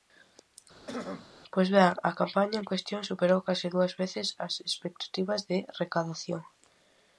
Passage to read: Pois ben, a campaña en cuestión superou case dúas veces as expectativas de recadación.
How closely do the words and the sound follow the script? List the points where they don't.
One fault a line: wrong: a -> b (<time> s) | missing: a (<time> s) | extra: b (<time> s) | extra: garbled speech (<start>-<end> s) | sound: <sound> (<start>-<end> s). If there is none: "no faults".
sound: throat clearing (0.9-1.3 s)